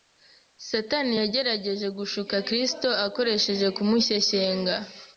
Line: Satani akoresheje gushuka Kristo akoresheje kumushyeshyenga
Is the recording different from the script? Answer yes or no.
yes